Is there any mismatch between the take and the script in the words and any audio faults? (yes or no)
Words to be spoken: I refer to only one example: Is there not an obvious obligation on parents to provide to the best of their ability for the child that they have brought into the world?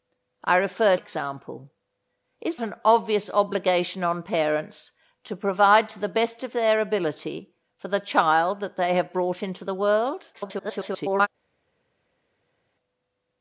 yes